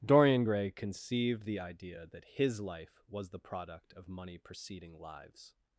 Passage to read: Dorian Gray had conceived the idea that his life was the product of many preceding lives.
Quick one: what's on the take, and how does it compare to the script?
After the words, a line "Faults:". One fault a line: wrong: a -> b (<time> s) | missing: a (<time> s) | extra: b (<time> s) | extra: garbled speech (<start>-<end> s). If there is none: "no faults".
Dorian Gray conceived the idea that his life was the product of money preceding lives.
Faults:
missing: had (0.7 s)
wrong: many -> money (4.1 s)